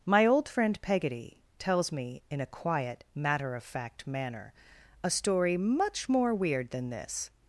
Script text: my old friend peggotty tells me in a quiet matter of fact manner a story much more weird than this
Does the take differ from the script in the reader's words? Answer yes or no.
no